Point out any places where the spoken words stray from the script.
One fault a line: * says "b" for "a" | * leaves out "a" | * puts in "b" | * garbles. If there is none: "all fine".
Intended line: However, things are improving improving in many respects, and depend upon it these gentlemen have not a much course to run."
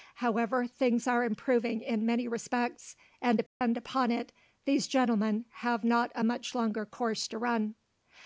* leaves out "improving"
* puts in "longer"